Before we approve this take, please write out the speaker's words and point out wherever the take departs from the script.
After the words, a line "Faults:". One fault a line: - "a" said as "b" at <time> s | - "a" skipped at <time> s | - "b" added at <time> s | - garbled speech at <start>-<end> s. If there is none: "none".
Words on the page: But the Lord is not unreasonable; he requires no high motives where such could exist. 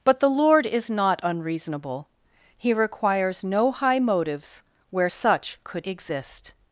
But the Lord is not unreasonable; he requires no high motives where such could exist.
Faults:
none